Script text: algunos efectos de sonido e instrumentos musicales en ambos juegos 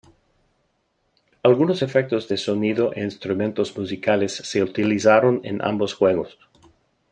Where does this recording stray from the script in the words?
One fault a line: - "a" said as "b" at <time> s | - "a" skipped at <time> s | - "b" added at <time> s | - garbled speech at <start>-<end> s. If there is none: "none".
- "se utilizaron" added at 4.3 s